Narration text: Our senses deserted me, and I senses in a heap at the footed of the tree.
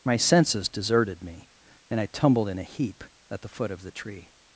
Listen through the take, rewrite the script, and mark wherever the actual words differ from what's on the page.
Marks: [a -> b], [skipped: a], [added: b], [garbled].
[Our -> My] senses deserted me, and I [senses -> tumbled] in a heap at the [footed -> foot] of the tree.